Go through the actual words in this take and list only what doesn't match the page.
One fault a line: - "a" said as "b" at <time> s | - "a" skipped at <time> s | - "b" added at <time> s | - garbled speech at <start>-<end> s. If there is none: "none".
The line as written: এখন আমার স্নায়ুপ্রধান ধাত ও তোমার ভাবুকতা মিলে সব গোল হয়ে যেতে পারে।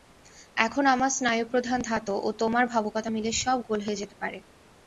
none